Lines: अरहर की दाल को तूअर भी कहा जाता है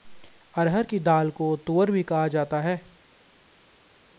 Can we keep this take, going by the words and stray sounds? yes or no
yes